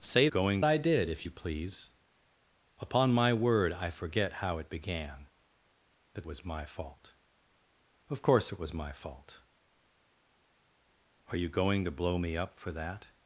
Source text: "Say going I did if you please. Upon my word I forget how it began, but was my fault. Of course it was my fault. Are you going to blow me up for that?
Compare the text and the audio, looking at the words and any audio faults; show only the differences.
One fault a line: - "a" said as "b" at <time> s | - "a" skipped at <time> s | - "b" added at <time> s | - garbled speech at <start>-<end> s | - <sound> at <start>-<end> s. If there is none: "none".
none